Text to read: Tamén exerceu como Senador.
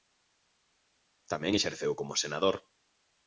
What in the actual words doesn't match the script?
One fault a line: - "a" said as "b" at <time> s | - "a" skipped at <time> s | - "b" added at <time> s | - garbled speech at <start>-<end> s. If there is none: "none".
none